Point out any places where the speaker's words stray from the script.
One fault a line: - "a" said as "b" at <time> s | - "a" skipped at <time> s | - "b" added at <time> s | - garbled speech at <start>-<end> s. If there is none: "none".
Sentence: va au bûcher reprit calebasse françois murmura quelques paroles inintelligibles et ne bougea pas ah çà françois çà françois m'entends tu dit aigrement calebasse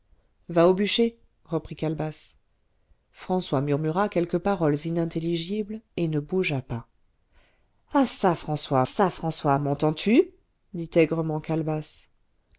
none